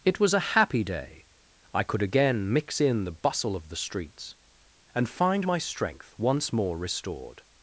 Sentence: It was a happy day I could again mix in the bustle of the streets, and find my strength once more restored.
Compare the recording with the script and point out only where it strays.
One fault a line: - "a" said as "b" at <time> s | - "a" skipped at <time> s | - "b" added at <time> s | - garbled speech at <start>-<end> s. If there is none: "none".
none